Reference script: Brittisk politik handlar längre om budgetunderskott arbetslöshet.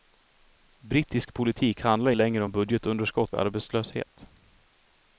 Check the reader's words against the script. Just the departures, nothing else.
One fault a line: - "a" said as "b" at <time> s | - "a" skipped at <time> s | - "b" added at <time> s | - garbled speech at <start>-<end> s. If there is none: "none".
none